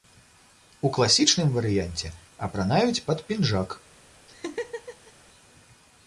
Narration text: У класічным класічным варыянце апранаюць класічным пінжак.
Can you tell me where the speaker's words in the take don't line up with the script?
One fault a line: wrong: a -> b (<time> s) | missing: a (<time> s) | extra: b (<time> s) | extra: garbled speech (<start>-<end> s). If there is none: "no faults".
missing: класічным (1.5 s)
wrong: класічным -> пад (3.1 s)